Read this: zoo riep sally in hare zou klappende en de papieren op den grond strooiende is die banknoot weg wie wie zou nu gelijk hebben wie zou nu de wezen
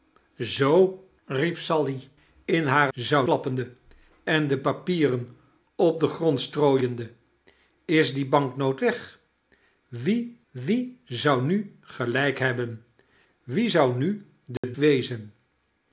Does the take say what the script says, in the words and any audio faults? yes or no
no